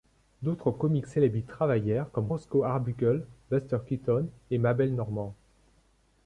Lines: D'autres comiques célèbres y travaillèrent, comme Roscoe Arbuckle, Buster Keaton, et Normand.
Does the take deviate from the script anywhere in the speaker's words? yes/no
yes